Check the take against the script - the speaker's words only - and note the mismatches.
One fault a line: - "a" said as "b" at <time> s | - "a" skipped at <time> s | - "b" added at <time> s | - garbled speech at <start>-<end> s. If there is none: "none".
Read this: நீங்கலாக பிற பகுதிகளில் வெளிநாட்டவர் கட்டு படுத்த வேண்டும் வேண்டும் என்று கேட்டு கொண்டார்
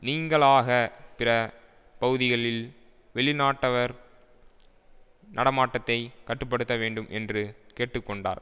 - "நடமாட்டத்தை" added at 5.3 s
- "வேண்டும்" skipped at 7.1 s